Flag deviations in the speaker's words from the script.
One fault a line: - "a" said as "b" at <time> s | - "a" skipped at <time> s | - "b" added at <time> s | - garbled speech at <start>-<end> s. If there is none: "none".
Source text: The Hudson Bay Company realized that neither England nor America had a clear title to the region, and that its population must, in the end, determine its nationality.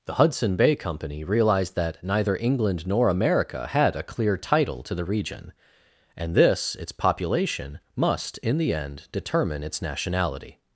- "that" said as "this" at 6.3 s